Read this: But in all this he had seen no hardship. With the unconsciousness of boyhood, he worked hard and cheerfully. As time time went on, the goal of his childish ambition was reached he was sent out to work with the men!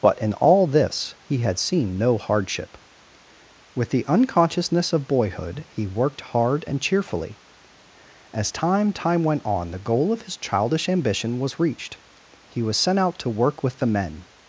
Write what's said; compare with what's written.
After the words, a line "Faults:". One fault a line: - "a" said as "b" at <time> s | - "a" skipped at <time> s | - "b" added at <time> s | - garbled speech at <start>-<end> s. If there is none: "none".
But in all this he had seen no hardship. With the unconsciousness of boyhood, he worked hard and cheerfully. As time time went on, the goal of his childish ambition was reached he was sent out to work with the men!
Faults:
none